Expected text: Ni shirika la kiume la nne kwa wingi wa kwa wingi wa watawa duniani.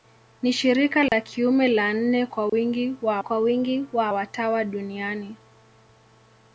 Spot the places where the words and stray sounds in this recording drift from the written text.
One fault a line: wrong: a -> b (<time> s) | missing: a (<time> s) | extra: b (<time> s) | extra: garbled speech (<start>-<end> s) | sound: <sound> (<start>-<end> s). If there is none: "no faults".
sound: dropout (1.1-1.1 s)
sound: dropout (2.5-2.5 s)